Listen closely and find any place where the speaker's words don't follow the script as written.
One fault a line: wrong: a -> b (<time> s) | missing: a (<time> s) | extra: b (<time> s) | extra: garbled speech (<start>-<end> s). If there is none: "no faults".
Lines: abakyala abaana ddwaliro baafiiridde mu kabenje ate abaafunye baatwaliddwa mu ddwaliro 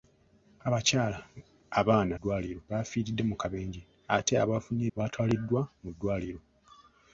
no faults